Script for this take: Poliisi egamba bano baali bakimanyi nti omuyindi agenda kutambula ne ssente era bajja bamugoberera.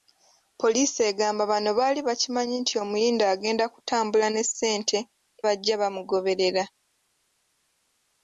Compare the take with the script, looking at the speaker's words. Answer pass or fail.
fail